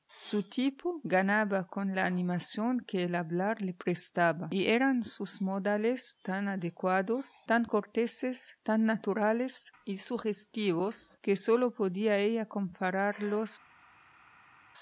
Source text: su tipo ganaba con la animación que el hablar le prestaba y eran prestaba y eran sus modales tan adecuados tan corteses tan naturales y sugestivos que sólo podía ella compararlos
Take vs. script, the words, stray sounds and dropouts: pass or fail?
fail